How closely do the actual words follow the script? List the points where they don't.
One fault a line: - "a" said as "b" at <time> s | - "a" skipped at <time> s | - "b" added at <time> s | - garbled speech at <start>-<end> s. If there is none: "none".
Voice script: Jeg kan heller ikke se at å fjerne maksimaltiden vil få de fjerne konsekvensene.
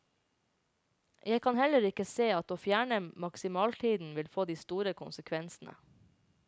- "fjerne" said as "store" at 4.5 s